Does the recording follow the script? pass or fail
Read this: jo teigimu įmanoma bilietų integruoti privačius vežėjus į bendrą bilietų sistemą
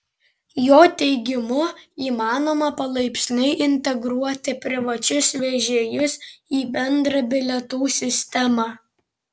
fail